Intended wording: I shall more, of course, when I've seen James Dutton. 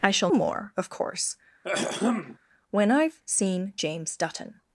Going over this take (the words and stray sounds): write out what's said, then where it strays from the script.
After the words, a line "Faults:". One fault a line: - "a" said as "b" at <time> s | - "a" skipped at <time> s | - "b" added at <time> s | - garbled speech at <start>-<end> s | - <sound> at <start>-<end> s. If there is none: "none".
I shall more, of course, when I've seen James Dutton.
Faults:
- throat clearing at 1.6-2.4 s